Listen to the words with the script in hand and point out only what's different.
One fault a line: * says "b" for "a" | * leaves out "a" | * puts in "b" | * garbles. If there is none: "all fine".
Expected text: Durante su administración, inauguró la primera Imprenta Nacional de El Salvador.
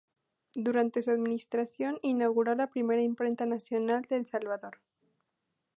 all fine